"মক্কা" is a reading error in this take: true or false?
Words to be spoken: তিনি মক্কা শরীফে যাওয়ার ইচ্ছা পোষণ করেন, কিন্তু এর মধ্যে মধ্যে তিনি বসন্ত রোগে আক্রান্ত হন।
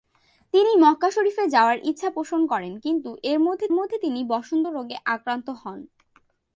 false